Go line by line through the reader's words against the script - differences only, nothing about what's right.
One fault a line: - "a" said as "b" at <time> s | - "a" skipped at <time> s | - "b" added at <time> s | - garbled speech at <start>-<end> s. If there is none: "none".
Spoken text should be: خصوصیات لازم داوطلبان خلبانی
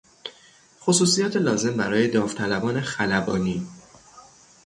- "برای" added at 1.8 s